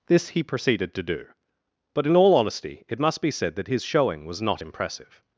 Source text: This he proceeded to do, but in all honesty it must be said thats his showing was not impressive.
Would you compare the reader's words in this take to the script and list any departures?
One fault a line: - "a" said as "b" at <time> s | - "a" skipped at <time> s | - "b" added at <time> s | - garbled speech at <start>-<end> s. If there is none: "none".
- "thats" said as "that" at 3.5 s